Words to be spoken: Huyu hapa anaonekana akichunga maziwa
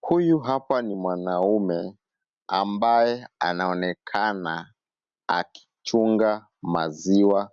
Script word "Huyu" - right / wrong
right